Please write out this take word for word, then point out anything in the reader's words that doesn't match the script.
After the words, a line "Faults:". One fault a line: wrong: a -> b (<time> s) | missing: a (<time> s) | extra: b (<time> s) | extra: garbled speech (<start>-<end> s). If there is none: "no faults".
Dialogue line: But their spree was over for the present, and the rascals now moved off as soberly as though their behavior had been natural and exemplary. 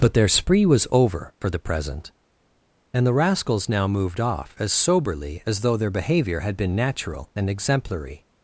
But their spree was over for the present, and the rascals now moved off as soberly as though their behavior had been natural and exemplary.
Faults:
no faults